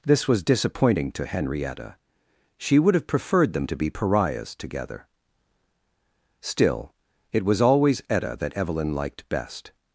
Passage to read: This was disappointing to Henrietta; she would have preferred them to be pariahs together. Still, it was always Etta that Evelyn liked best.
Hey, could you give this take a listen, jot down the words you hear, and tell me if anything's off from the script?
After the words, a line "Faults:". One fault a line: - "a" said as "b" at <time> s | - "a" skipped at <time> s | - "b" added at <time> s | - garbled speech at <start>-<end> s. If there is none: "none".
This was disappointing to Henrietta; she would have preferred them to be pariahs together. Still, it was always Etta that Evelyn liked best.
Faults:
none